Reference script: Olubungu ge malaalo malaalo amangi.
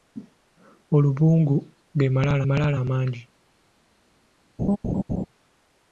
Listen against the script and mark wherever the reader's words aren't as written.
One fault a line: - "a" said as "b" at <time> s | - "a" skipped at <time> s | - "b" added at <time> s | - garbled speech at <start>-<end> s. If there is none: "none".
none